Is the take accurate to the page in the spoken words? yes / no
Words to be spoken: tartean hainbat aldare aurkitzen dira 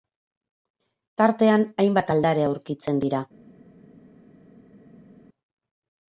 yes